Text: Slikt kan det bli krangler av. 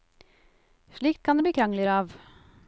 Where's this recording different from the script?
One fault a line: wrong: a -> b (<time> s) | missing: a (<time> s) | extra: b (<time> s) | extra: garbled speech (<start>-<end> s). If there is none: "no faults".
no faults